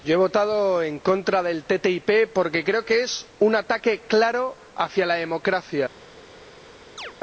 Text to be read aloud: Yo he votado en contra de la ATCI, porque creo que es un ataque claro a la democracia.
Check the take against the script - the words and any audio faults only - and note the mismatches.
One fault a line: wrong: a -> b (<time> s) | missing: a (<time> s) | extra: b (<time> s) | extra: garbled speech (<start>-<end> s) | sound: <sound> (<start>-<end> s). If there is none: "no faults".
sound: chirp (7.0-7.1 s)